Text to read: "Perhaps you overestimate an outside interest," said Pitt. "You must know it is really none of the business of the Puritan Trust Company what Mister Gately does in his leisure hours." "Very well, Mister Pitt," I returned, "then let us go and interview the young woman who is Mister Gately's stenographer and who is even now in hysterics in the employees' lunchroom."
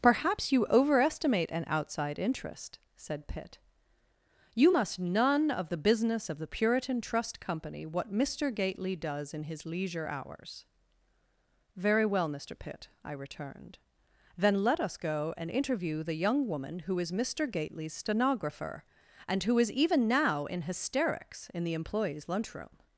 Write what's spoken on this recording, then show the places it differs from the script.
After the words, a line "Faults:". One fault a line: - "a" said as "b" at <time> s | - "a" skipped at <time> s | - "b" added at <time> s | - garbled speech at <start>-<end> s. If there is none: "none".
"Perhaps you overestimate an outside interest," said Pitt. "You must none of the business of the Puritan Trust Company what Mister Gately does in his leisure hours." "Very well, Mister Pitt," I returned, "then let us go and interview the young woman who is Mister Gately's stenographer and who is even now in hysterics in the employees' lunchroom."
Faults:
- "know it is really" skipped at 5.0 s